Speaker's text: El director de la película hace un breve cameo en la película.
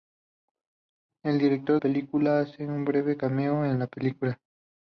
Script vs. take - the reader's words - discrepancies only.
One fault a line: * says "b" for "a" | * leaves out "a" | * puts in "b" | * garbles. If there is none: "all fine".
* leaves out "de la"